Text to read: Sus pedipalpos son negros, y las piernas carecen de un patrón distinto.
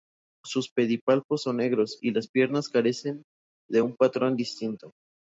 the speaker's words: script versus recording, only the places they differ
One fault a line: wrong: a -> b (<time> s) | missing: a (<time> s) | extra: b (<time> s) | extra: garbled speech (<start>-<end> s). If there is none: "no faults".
no faults